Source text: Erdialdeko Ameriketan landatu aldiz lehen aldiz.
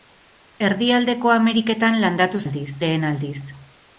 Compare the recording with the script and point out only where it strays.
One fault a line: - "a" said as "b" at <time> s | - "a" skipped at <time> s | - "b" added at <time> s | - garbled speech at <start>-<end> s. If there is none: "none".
none